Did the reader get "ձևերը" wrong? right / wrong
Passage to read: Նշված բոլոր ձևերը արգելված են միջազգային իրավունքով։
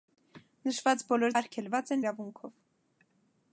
wrong